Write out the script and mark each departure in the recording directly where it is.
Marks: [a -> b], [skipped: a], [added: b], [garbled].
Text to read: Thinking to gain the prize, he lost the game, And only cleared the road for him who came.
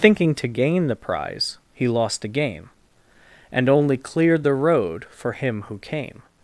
Thinking to gain the prize, he lost the game, And only cleared the road for him who came.